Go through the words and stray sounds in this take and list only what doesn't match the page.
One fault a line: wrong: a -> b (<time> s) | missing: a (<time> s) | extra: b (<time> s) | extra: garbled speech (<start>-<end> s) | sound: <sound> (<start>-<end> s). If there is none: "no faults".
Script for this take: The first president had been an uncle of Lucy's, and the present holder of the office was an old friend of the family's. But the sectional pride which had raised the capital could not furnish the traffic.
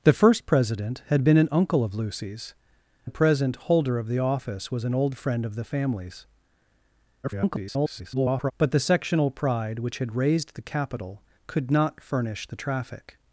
missing: and (2.5 s)
extra: garbled speech (7.2-8.5 s)